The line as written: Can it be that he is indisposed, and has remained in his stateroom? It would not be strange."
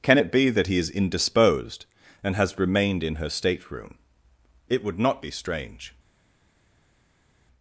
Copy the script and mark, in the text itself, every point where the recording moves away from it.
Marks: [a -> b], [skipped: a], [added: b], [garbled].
Can it be that he is indisposed, and has remained in [his -> her] stateroom? It would not be strange."